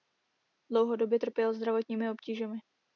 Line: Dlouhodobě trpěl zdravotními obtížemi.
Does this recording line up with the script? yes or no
yes